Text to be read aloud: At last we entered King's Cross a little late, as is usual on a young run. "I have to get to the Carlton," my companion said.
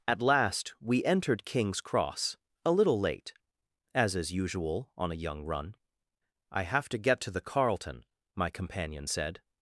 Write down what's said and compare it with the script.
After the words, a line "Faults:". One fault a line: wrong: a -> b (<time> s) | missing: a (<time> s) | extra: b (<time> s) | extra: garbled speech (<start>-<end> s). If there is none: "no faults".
At last we entered King's Cross a little late, as is usual on a young run. "I have to get to the Carlton," my companion said.
Faults:
no faults